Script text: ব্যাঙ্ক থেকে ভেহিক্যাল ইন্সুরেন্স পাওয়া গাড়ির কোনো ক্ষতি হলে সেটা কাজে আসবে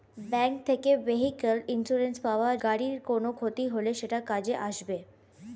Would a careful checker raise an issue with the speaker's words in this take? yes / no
no